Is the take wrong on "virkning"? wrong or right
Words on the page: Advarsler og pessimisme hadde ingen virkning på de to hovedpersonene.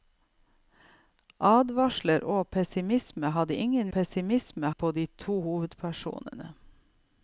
wrong